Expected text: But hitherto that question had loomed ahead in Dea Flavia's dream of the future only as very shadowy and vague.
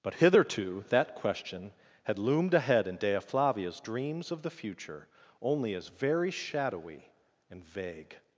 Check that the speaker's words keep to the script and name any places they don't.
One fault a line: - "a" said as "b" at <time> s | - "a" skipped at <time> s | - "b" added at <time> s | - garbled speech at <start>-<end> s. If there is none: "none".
- "dream" said as "dreams" at 3.8 s